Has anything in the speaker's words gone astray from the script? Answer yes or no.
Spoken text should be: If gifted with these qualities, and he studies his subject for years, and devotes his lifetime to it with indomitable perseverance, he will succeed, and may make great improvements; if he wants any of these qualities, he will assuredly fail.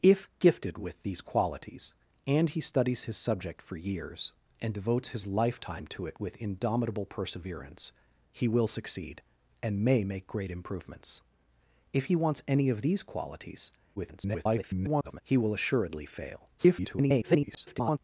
yes